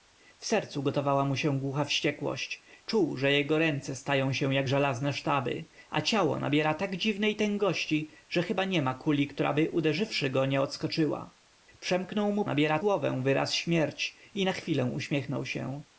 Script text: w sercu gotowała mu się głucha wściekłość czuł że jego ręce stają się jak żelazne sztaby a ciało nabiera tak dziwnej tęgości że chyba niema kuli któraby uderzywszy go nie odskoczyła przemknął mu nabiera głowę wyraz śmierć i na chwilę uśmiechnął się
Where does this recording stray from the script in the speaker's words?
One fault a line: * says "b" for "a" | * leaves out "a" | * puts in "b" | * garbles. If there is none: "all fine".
all fine